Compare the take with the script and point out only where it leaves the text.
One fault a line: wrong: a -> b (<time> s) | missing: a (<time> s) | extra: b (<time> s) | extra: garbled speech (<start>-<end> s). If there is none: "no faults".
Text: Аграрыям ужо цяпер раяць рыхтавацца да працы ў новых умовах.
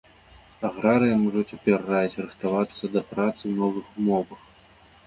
no faults